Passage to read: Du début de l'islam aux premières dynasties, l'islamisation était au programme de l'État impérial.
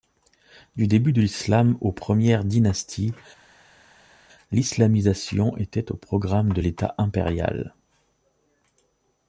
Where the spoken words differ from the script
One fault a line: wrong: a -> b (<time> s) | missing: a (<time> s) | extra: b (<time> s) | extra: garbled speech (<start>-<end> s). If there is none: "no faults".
no faults